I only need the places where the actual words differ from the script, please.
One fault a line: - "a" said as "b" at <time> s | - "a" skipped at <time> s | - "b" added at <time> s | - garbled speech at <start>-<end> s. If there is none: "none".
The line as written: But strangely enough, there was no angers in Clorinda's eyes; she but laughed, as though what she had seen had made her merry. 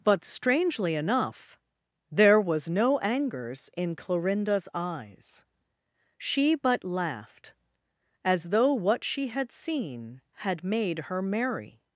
none